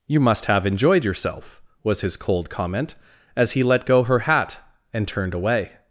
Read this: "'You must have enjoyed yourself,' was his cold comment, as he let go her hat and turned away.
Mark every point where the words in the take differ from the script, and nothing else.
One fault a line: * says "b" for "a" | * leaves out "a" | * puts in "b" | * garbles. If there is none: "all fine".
all fine